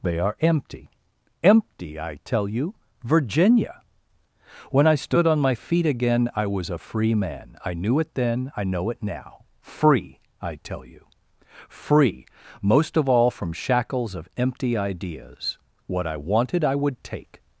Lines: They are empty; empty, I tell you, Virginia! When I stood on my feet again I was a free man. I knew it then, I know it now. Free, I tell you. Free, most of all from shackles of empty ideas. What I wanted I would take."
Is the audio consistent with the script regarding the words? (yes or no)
yes